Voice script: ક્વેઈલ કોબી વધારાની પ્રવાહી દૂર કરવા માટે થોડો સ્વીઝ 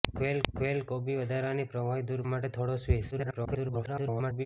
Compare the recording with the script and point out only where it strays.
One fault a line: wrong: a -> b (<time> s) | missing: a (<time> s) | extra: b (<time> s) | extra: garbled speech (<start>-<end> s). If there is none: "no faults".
extra: ક્વેઈલ (0.5 s)
missing: કરવા (2.2 s)
extra: garbled speech (3.1-4.5 s)